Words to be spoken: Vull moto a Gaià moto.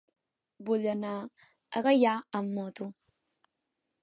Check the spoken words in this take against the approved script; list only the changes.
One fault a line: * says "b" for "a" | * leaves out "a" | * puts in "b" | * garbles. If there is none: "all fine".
* says "anar" for "moto"
* puts in "amb"